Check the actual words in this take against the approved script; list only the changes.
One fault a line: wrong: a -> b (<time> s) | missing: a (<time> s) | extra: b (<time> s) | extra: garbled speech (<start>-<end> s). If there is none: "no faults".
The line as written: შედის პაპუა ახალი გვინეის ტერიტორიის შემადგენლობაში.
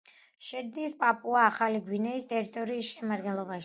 no faults